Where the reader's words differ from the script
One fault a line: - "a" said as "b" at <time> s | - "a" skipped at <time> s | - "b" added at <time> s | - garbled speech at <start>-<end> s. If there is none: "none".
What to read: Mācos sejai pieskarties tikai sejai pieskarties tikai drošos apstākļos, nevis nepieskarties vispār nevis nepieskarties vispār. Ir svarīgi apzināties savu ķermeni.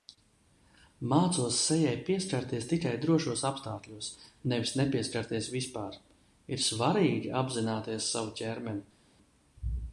- "sejai pieskarties tikai" skipped at 2.9 s
- "nevis nepieskarties vispār" skipped at 6.0 s